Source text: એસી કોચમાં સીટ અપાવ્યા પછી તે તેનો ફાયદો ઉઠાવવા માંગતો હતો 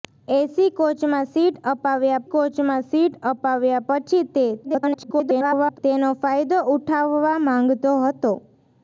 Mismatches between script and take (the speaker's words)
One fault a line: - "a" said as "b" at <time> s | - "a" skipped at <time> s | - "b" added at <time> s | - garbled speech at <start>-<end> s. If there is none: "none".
- "કોચમાં સીટ અપાવ્યા" added at 2.3 s
- garbled speech at 4.6-5.8 s